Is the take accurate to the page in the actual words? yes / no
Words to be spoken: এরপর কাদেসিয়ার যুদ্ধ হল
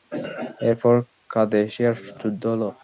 yes